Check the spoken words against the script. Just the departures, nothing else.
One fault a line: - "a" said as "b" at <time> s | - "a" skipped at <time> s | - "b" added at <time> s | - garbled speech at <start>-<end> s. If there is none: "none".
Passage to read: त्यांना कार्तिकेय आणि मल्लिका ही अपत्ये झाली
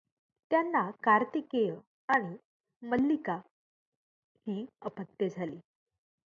none